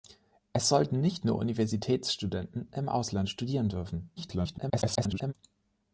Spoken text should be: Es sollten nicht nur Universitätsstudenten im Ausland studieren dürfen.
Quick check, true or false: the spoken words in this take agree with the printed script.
false